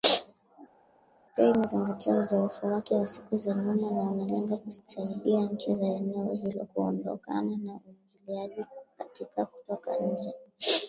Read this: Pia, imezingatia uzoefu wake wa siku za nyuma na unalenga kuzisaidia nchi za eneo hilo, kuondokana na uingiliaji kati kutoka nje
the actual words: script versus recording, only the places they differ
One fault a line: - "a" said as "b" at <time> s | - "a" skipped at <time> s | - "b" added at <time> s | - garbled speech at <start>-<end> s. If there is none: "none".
none